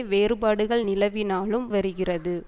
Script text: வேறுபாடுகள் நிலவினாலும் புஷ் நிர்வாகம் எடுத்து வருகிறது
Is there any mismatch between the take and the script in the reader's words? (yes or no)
yes